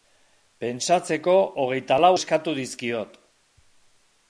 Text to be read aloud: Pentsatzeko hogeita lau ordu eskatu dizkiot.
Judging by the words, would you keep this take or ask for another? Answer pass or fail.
fail